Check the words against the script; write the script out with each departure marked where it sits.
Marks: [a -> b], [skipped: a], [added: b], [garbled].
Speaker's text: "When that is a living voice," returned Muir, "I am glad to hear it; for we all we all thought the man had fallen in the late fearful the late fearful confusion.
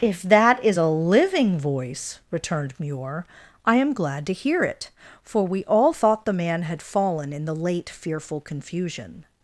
["When -> If] that is a living voice," returned Muir, "I am glad to hear it; for we all [skipped: we all] thought the man had fallen in the late fearful [skipped: the late fearful] confusion.